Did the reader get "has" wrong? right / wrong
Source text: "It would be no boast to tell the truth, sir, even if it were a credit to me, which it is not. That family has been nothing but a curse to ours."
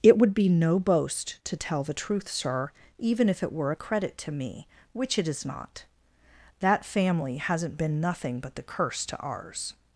wrong